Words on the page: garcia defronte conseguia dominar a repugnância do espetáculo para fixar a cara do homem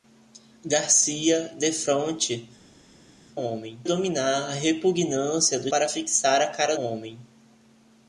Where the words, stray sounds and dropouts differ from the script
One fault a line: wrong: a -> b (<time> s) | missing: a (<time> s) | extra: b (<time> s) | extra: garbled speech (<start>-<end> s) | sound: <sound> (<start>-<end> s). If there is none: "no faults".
wrong: conseguia -> homem (3.4 s)
missing: espetáculo (5.7 s)
missing: do (6.8 s)